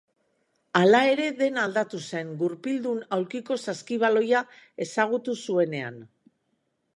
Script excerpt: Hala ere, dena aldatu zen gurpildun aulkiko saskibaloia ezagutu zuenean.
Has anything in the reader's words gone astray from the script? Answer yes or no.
no